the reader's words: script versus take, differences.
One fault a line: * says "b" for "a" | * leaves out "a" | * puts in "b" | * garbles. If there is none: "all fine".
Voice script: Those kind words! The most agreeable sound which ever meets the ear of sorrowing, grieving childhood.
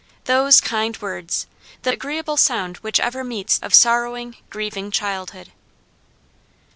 * leaves out "most"
* leaves out "the ear"